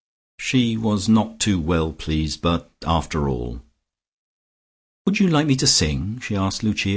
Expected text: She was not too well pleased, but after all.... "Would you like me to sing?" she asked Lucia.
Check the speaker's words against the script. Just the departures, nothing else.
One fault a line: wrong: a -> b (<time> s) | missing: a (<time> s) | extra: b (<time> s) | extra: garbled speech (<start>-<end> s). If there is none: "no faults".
no faults